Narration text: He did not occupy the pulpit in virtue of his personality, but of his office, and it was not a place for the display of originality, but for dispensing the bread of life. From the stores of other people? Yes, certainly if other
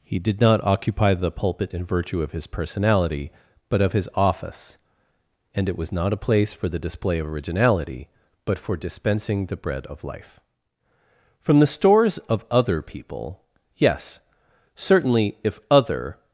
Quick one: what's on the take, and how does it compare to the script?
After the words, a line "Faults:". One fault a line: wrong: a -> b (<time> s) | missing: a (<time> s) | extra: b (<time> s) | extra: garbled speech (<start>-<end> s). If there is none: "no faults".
He did not occupy the pulpit in virtue of his personality, but of his office, and it was not a place for the display of originality, but for dispensing the bread of life. From the stores of other people? Yes, certainly if other
Faults:
no faults